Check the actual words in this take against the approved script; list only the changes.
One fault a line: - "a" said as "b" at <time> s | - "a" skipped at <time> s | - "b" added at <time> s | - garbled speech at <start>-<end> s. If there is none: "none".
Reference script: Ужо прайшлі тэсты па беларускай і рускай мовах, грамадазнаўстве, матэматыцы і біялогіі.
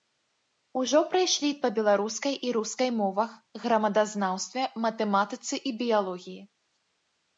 - "тэсты" skipped at 1.5 s